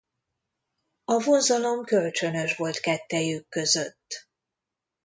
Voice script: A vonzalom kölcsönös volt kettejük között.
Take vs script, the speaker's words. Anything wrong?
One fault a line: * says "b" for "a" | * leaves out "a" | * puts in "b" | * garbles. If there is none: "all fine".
all fine